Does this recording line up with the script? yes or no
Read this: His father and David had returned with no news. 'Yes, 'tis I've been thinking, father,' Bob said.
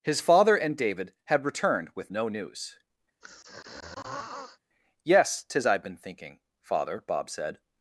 yes